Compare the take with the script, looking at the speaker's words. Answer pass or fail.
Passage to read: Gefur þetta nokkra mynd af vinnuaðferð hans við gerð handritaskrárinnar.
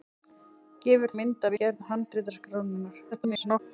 fail